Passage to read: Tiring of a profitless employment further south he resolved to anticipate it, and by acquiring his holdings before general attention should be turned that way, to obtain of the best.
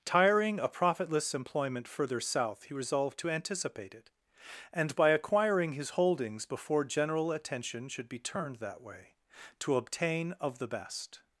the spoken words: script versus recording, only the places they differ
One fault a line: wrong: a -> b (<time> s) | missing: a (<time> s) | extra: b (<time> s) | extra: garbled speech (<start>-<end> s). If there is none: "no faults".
missing: of (0.6 s)